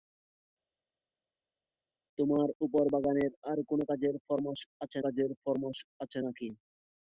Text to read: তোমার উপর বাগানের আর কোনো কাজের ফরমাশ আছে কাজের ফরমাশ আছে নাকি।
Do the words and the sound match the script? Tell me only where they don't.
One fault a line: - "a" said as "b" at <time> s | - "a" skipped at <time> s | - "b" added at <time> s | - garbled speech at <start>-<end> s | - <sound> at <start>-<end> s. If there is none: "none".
none